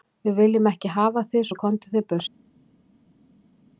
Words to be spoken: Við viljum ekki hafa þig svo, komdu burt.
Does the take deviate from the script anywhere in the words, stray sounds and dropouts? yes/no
yes